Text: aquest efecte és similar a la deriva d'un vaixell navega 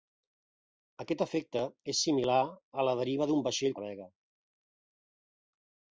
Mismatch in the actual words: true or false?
false